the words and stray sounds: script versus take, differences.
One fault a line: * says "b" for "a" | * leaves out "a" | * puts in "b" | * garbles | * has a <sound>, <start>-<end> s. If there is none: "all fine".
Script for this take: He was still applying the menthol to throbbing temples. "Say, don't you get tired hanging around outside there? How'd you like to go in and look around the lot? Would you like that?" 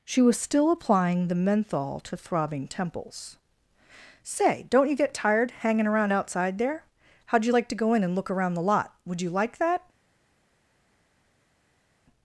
* says "She" for "He"